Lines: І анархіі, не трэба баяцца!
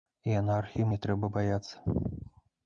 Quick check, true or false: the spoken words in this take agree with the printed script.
true